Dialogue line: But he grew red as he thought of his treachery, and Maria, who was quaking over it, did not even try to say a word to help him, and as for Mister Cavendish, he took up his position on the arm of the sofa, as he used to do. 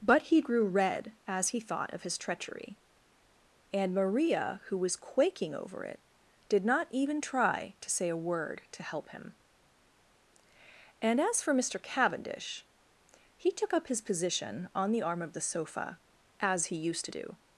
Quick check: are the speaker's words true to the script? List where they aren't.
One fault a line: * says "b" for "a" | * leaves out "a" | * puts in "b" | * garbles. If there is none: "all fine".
all fine